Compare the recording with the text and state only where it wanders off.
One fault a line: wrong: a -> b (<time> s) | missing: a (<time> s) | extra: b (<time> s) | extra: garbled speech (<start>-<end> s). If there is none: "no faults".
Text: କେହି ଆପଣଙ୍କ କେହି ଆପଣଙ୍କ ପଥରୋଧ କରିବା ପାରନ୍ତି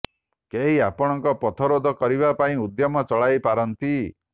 wrong: କେହି ଆପଣଙ୍କ ପଥରୋଧ କରିବା -> ପଥରୋଧ କରିବା ପାଇଁ ଉଦ୍ୟମ ଚଳାଇ (1.4 s)